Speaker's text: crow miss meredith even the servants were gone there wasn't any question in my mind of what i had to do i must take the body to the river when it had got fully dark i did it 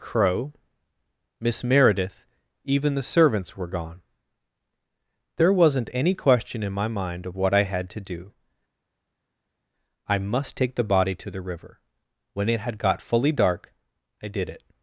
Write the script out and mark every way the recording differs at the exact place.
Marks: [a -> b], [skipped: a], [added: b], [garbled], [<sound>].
crow miss meredith even the servants were gone there wasn't any question in my mind of what i had to do i must take the body to the river when it had got fully dark i did it